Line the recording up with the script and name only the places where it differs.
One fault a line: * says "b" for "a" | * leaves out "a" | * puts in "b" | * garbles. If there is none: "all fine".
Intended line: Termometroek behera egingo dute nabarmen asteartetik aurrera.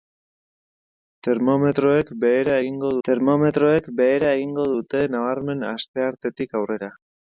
* puts in "termometroek behera egingo"